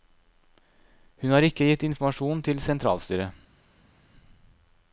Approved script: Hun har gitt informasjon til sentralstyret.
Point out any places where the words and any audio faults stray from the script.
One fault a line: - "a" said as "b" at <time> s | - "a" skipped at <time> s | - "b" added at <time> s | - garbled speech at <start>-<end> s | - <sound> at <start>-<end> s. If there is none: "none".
- "ikke" added at 1.4 s